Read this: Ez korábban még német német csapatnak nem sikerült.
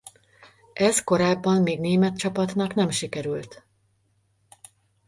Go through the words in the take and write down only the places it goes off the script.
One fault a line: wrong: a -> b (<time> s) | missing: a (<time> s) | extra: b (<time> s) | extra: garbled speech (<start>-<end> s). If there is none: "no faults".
missing: német (2.2 s)